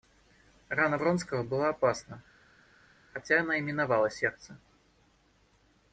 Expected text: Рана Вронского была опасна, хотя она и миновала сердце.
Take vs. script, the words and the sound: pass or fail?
pass